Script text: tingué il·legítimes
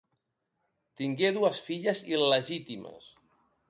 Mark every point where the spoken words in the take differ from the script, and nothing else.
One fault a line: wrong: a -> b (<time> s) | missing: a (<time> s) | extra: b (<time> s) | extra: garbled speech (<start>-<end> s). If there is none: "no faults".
extra: dues filles (1.4 s)